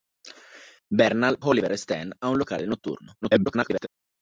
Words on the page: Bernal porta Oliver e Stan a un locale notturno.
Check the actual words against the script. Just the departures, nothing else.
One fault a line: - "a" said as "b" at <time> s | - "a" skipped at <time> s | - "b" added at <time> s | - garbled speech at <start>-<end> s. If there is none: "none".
- "porta" skipped at 1.4 s
- garbled speech at 3.2-3.9 s